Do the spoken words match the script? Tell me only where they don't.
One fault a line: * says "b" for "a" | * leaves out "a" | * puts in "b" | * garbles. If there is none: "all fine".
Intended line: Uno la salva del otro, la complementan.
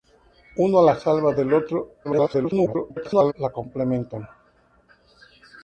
* garbles